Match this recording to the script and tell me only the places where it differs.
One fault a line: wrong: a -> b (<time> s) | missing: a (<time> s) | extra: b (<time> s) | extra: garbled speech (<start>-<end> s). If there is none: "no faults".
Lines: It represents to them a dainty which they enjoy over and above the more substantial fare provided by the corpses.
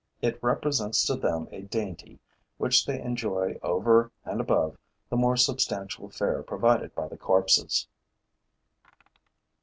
no faults